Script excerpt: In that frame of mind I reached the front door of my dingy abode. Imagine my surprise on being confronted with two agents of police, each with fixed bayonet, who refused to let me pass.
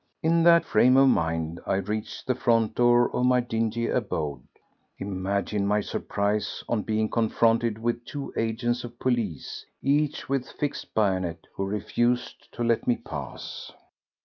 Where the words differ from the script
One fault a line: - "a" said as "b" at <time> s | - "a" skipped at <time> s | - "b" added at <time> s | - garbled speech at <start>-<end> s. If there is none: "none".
none